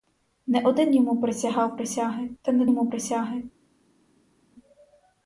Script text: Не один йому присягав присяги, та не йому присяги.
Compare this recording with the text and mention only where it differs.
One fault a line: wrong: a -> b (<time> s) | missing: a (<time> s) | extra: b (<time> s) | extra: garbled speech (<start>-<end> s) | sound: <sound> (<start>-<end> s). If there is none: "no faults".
no faults